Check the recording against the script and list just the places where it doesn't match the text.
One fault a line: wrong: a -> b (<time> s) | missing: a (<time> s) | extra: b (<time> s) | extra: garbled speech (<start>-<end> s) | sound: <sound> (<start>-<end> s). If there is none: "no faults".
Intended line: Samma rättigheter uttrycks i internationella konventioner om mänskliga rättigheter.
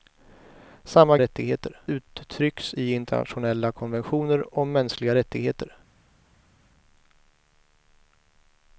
no faults